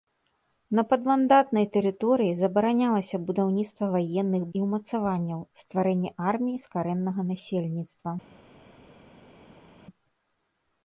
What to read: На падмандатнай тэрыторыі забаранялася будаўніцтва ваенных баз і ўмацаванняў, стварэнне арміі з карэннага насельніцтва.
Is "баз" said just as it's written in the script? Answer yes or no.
no